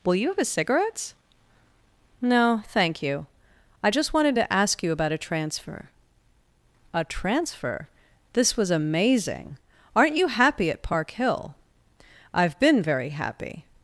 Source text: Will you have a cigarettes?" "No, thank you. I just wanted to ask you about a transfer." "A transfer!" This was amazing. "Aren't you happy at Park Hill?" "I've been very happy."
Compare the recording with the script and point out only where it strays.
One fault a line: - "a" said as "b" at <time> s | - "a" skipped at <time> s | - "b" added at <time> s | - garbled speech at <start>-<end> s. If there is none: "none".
none